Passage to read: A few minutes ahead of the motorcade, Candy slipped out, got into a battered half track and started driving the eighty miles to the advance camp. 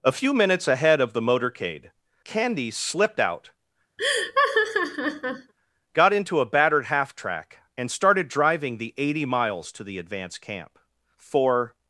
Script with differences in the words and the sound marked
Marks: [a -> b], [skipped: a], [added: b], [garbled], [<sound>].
A few minutes ahead of the motorcade, Candy slipped out, [laugh] got into a battered half track and started driving the eighty miles to the advance camp. [added: For]